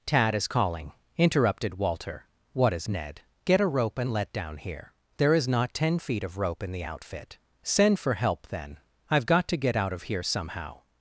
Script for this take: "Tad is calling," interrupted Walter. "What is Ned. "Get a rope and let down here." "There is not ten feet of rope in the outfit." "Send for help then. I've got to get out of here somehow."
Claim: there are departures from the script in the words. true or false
false